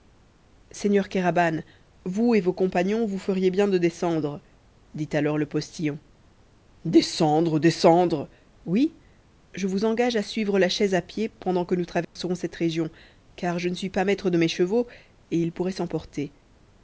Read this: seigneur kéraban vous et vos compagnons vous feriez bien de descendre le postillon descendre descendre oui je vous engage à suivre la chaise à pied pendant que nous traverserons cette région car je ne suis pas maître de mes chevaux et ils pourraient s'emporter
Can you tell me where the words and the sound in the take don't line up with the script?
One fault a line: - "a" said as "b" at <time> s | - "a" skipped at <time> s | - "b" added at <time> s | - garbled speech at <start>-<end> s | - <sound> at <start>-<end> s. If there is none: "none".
- "dit alors" added at 5.0 s
- dropout at 12.0-12.2 s